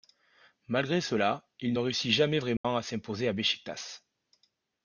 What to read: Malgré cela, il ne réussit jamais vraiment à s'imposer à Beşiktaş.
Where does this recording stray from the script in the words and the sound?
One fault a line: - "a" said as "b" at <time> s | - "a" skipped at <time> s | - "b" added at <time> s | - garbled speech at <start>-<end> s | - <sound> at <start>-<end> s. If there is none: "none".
- dropout at 2.6-2.6 s